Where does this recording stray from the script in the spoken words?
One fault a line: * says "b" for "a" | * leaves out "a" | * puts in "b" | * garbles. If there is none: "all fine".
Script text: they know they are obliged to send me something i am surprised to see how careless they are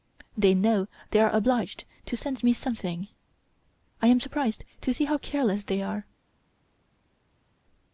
all fine